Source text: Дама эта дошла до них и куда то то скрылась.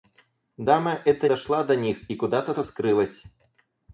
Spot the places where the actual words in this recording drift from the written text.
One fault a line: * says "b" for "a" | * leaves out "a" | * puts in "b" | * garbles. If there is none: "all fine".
all fine